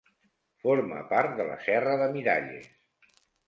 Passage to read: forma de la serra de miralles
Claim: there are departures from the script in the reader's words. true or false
true